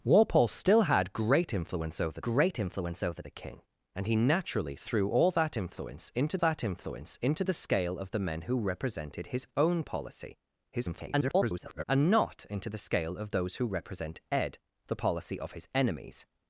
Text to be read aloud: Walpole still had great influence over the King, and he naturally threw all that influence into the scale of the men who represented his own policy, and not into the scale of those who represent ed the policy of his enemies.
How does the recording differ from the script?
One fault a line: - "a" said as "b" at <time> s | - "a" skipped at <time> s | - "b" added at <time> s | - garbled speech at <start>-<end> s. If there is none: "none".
- "great influence over" added at 2.2 s
- "that influence into" added at 6.4 s
- garbled speech at 10.7-11.8 s